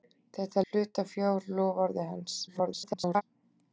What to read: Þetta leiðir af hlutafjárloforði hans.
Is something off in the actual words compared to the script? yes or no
yes